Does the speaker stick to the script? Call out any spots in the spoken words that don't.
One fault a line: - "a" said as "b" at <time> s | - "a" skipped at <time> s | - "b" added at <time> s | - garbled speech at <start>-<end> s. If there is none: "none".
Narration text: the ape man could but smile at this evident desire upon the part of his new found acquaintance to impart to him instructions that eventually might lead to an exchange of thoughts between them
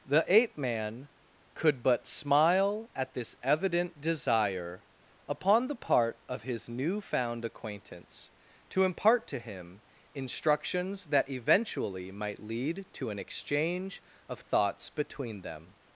none